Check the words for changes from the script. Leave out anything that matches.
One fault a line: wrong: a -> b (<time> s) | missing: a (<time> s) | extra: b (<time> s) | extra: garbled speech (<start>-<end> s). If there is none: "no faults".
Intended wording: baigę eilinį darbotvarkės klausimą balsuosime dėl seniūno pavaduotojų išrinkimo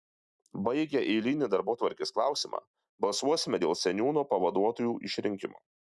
no faults